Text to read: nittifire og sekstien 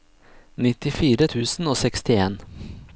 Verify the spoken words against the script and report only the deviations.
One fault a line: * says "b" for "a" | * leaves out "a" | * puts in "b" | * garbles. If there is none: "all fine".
* puts in "tusen"